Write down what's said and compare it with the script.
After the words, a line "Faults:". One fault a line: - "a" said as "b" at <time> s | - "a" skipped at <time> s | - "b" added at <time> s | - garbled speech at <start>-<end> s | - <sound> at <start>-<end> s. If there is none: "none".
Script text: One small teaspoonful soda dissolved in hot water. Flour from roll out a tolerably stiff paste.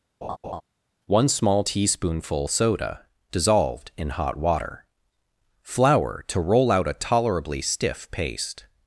One small teaspoonful soda dissolved in hot water. Flour to roll out a tolerably stiff paste.
Faults:
- laugh at 0.2-0.6 s
- "from" said as "to" at 6.3 s